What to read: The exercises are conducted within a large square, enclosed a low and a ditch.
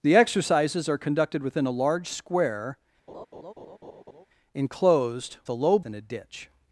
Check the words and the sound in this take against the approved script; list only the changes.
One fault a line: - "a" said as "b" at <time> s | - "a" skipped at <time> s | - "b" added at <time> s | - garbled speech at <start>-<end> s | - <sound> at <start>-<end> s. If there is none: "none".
- laugh at 3.1-4.3 s